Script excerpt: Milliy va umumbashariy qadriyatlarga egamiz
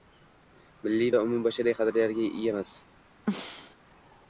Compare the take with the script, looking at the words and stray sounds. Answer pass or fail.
fail